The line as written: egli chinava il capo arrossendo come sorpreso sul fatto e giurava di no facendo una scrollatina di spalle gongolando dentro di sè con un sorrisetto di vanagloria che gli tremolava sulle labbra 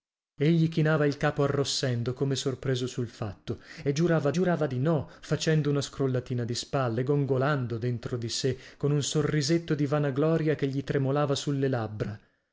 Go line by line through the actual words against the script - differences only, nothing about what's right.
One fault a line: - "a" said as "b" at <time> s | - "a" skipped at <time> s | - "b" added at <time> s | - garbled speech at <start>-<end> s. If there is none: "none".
- "giurava" added at 4.3 s